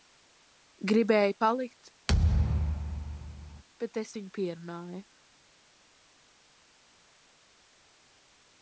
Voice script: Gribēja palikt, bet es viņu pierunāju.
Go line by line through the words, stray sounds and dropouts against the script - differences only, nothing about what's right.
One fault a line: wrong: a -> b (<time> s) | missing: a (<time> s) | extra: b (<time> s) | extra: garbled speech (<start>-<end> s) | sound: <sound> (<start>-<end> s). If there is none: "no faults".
sound: thud (2.1-3.6 s)